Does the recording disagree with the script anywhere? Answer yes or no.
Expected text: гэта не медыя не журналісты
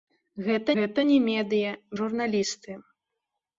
yes